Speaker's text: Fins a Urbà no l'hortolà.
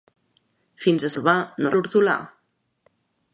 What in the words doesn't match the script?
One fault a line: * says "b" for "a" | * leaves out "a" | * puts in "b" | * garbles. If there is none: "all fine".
all fine